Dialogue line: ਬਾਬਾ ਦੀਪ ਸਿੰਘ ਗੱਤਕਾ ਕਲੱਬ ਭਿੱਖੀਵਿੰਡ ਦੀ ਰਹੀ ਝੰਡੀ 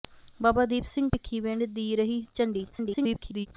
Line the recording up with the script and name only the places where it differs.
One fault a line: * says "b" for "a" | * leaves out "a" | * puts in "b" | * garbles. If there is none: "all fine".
* leaves out "ਗੱਤਕਾ ਕਲੱਬ"
* garbles